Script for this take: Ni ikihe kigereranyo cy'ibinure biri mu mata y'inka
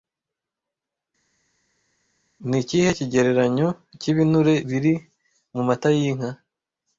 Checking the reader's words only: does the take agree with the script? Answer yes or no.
yes